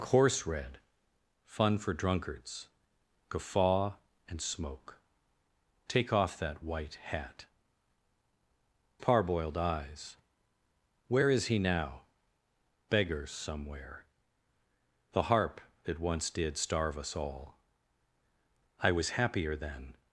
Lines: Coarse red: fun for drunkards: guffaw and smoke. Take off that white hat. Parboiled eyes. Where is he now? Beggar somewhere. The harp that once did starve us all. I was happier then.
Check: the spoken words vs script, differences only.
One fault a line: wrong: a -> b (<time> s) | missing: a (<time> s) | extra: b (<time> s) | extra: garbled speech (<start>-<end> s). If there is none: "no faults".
no faults